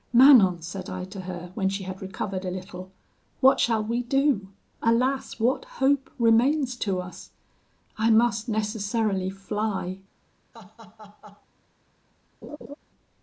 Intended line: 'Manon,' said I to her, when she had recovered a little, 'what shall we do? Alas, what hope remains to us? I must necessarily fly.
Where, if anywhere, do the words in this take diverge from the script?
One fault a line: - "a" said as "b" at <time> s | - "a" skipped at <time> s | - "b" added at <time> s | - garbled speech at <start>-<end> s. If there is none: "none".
none